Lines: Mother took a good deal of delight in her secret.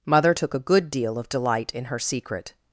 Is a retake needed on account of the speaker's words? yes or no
no